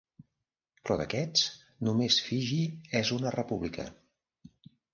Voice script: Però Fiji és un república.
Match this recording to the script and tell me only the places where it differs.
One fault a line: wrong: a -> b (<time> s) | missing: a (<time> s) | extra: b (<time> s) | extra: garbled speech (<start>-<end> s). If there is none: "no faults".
extra: d'aquests només (1.0 s)
wrong: un -> una (3.2 s)